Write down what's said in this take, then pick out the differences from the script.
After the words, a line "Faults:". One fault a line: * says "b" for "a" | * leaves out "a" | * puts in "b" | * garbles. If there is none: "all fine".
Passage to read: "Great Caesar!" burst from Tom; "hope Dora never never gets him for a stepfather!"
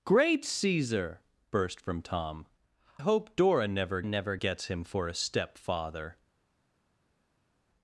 "Great Caesar!" burst from Tom; "hope Dora never never gets him for a stepfather!"
Faults:
all fine